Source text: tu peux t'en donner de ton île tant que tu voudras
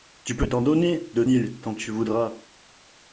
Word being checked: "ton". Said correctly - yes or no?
no